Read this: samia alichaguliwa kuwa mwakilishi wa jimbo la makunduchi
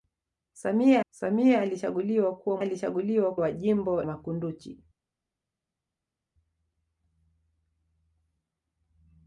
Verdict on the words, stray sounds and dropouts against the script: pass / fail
fail